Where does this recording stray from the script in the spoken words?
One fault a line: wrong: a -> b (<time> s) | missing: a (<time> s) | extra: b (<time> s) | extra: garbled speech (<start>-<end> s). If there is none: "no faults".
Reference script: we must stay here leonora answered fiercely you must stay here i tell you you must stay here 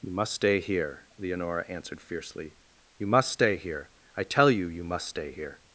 wrong: we -> you (0.0 s)